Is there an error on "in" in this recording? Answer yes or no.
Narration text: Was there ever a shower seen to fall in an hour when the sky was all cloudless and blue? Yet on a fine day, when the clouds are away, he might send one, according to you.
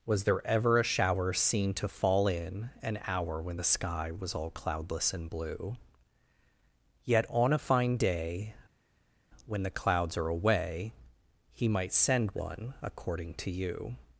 no